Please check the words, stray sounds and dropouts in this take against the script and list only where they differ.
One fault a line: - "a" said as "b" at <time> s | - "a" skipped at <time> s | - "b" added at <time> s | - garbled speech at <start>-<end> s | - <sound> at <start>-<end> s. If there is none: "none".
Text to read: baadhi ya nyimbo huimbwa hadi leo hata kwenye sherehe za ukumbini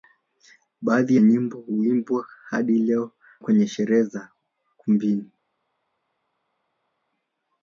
- "ya" skipped at 1.1 s
- "hata" skipped at 3.1 s